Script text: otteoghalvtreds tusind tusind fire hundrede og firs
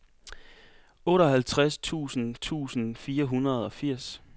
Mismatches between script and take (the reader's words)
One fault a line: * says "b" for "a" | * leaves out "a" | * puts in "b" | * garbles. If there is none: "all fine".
all fine